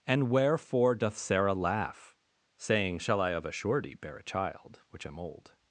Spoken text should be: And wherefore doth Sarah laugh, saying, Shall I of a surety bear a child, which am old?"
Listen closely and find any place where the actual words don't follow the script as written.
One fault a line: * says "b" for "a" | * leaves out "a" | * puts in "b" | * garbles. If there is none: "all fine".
all fine